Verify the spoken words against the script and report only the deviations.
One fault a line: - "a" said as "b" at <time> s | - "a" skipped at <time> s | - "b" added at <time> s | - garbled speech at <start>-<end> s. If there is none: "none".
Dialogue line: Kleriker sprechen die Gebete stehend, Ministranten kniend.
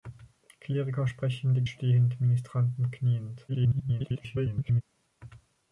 - "Gebete" skipped at 1.6 s
- garbled speech at 3.5-4.8 s